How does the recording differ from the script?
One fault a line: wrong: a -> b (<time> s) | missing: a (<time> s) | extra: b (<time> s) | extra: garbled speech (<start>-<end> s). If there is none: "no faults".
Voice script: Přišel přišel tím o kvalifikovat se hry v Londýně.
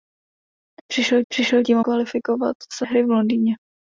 no faults